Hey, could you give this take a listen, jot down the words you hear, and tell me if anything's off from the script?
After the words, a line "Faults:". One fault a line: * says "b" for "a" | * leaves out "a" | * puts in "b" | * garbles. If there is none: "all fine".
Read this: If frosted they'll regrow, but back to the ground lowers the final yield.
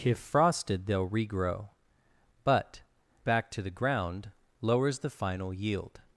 If frosted they'll regrow, but back to the ground lowers the final yield.
Faults:
all fine